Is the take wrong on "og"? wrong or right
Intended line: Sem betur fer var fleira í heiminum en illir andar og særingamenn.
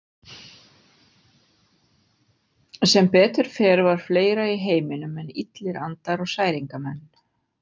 right